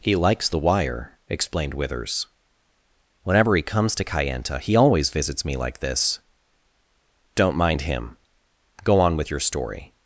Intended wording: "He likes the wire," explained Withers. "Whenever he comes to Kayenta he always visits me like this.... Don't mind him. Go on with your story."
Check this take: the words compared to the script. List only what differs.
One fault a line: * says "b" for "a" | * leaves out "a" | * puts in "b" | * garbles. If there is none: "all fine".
all fine